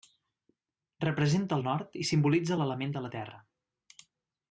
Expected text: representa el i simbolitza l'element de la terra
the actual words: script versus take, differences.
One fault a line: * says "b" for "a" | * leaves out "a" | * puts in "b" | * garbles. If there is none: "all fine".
* puts in "nord"